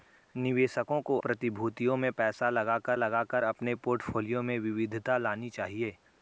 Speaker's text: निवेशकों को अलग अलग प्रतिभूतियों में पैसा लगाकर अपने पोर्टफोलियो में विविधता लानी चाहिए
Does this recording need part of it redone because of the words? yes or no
yes